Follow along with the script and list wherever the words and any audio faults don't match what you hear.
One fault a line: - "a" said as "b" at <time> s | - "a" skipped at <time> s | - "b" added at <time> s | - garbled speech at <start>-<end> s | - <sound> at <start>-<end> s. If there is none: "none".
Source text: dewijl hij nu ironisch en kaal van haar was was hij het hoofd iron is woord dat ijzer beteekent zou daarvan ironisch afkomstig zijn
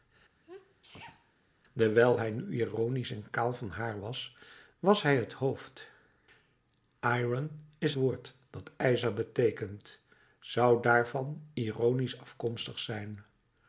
- sneeze at 0.4-1.3 s